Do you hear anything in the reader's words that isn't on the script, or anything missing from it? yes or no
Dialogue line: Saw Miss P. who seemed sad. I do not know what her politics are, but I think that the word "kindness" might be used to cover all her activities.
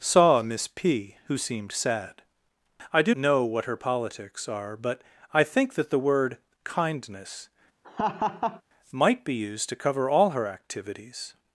yes